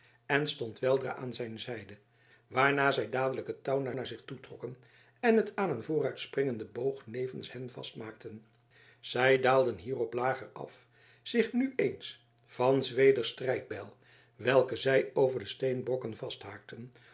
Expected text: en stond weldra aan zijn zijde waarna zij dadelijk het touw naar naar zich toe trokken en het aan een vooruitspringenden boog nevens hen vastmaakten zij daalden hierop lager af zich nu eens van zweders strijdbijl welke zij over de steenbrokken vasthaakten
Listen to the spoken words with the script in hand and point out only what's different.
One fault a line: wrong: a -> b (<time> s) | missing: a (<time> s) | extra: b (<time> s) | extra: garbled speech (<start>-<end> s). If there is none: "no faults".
no faults